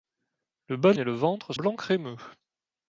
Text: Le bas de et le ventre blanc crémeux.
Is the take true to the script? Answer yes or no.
yes